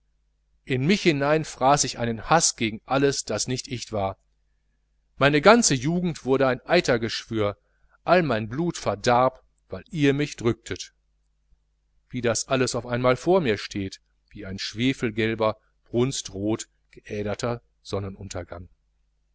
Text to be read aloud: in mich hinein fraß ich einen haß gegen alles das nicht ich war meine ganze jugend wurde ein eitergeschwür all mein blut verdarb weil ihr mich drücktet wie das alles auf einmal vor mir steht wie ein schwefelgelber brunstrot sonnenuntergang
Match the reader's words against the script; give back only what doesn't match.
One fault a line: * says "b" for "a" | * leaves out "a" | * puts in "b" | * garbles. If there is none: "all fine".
* puts in "geäderter"